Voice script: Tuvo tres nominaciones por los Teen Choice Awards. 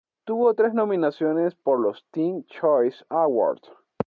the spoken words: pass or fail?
pass